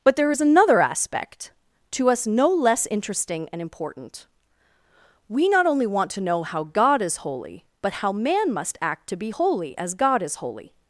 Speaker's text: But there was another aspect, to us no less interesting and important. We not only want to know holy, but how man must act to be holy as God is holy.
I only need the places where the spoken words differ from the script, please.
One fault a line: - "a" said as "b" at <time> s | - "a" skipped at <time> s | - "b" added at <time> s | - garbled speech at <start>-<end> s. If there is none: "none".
- "was" said as "is" at 0.3 s
- "how God is" added at 6.4 s